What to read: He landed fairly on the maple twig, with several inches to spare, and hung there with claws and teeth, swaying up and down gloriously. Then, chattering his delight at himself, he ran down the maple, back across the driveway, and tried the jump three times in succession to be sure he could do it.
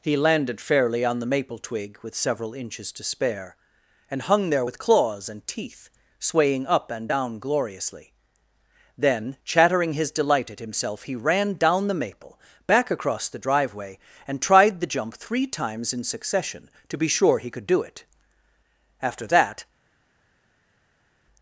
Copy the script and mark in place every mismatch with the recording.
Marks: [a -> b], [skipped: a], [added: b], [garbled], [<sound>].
He landed fairly on the maple twig, with several inches to spare, and hung there with claws and teeth, swaying up and down gloriously. Then, chattering his delight at himself, he ran down the maple, back across the driveway, and tried the jump three times in succession to be sure he could do it. [added: After that]